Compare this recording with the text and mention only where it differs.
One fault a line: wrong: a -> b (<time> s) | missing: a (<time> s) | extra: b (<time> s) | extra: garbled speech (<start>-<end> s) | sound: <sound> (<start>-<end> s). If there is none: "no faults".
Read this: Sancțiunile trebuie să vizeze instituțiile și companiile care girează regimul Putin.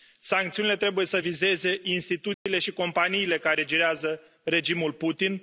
sound: dropout (2.3-2.5 s)